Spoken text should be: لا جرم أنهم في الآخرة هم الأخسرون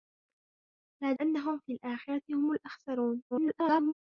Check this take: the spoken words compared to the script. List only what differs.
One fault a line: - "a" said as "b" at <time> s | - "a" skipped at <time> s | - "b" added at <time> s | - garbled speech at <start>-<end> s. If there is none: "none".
- "جرم" skipped at 1.1 s
- garbled speech at 3.3-3.9 s